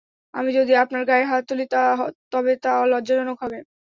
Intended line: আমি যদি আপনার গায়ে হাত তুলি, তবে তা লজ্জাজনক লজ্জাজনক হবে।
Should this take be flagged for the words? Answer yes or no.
yes